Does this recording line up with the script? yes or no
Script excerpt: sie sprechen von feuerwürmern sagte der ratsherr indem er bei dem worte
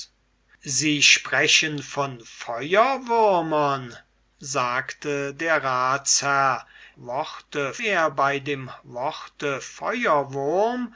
no